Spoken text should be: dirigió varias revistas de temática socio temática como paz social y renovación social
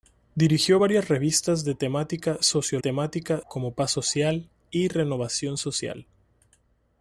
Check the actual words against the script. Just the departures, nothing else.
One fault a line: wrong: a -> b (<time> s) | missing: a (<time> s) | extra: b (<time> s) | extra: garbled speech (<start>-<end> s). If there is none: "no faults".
no faults